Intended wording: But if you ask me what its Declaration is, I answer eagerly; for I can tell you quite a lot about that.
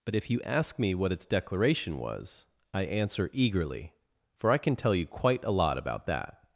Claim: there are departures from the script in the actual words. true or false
true